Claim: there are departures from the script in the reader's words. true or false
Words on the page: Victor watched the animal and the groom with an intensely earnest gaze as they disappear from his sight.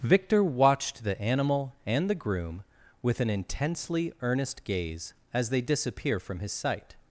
false